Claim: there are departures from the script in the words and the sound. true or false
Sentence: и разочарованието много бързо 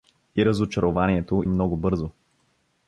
false